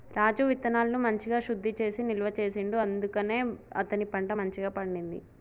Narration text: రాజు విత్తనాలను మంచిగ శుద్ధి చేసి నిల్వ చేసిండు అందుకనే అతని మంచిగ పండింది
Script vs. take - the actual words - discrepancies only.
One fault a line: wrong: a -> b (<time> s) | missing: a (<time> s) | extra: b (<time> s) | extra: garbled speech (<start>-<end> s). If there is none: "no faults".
extra: పంట (4.1 s)